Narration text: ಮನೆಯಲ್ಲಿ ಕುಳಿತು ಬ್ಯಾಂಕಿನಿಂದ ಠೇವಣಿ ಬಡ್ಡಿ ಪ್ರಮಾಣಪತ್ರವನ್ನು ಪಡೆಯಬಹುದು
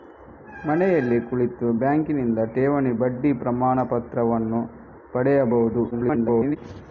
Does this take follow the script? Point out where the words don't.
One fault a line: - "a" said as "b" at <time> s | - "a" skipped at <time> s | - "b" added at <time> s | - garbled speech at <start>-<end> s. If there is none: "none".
- garbled speech at 5.9-6.6 s